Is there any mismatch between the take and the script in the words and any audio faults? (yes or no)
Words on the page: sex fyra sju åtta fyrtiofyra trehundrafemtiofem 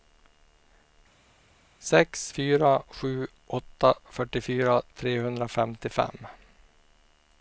no